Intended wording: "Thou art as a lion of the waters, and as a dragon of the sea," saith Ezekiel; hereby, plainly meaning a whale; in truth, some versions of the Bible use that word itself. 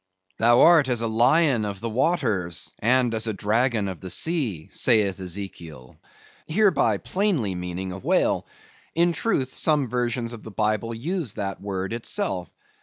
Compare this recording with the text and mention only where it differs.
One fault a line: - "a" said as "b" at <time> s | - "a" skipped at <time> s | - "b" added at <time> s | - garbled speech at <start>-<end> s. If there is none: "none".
none